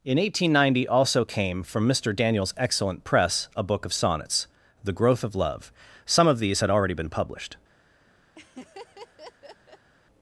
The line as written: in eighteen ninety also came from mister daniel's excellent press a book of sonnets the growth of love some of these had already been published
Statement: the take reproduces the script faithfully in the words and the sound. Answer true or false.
false